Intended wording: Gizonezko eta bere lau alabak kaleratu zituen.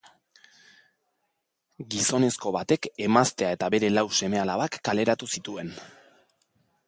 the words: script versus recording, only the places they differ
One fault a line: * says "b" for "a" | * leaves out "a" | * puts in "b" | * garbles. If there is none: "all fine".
* puts in "batek emaztea"
* puts in "seme"